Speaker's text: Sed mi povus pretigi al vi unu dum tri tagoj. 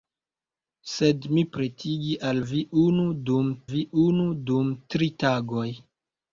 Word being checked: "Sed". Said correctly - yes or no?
yes